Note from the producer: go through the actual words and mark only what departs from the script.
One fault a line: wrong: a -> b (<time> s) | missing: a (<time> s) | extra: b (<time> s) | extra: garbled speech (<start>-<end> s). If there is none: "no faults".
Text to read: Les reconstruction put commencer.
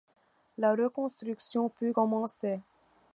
wrong: Les -> La (0.6 s)